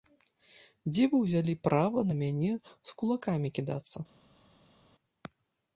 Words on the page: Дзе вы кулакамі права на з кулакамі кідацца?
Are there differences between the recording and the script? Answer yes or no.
yes